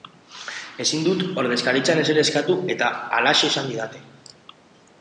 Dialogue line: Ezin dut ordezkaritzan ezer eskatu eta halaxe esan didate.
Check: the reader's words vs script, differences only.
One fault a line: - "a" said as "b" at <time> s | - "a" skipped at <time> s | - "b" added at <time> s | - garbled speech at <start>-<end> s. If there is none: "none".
none